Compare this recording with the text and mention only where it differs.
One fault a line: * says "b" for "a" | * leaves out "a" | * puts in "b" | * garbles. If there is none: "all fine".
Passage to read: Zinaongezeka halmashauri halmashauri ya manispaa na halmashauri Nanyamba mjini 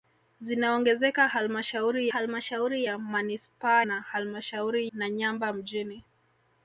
all fine